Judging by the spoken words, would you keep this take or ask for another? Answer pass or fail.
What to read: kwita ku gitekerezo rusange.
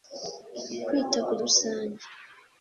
fail